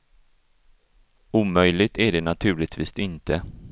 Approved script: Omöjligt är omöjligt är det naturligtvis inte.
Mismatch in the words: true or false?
true